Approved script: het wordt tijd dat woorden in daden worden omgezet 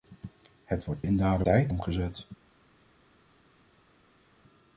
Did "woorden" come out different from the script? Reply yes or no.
yes